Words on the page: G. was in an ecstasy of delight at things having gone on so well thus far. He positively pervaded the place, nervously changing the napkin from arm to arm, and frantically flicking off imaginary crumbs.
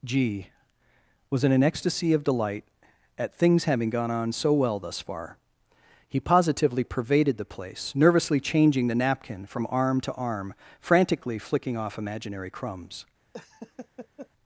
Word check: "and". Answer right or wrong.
wrong